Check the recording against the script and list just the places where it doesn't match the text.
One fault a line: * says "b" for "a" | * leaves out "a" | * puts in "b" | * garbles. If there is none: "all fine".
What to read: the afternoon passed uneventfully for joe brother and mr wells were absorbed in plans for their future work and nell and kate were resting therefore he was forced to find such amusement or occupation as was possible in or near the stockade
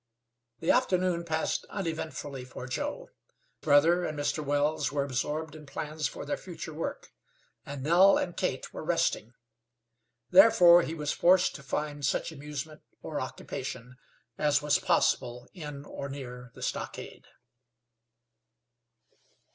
all fine